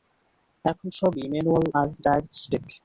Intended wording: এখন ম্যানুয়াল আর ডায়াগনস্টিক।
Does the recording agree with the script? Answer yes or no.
no